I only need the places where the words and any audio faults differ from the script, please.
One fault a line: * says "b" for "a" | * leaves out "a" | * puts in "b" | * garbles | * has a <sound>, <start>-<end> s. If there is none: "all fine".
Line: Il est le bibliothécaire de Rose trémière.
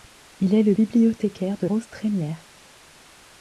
all fine